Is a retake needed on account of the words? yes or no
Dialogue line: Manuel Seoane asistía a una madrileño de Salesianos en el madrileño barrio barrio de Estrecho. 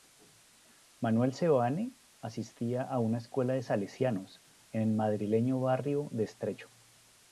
yes